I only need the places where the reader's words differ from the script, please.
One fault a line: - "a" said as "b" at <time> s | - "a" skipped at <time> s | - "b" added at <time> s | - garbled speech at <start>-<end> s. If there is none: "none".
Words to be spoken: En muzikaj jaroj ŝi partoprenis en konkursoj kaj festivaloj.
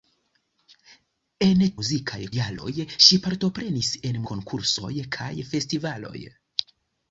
none